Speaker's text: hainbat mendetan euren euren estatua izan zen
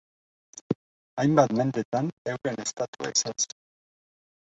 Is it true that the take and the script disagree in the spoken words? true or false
true